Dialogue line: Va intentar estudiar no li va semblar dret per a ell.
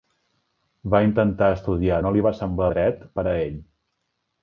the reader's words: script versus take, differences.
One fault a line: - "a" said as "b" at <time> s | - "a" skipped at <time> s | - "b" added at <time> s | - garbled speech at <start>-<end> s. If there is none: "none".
none